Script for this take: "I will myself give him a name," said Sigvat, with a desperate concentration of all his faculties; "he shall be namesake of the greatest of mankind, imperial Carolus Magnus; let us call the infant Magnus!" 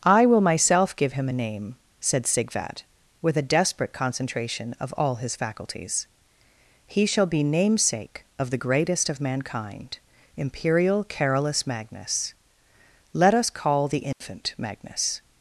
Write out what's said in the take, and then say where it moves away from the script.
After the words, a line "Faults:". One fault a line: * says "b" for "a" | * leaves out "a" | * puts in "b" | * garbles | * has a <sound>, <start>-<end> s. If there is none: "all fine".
"I will myself give him a name," said Sigvat, with a desperate concentration of all his faculties; "he shall be namesake of the greatest of mankind, imperial Carolus Magnus; let us call the infant Magnus!"
Faults:
* has a dropout, 14.1-14.2 s